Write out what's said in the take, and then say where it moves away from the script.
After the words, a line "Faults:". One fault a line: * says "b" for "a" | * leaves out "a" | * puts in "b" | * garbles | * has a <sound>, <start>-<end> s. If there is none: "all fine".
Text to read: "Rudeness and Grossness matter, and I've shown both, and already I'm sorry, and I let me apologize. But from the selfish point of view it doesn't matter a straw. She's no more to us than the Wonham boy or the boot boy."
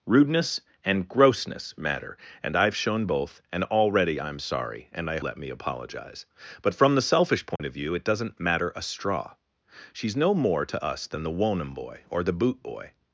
"Rudeness and Grossness matter, and I've shown both, and already I'm sorry, and I let me apologize. But from the selfish point of view it doesn't matter a straw. She's no more to us than the Wonham boy or the boot boy."
Faults:
* has a dropout, 7.6-7.6 s